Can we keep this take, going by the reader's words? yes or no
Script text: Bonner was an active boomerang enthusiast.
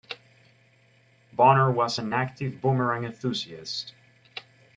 yes